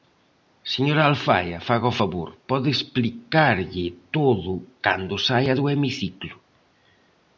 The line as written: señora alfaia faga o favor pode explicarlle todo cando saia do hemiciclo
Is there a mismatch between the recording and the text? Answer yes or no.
no